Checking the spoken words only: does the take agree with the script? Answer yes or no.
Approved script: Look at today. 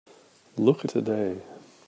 yes